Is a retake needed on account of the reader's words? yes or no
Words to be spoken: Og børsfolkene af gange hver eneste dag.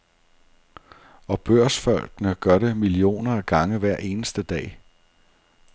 yes